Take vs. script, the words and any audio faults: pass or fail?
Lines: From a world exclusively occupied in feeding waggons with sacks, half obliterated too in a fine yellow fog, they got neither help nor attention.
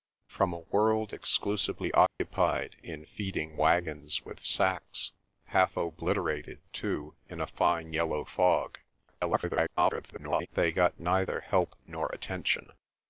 fail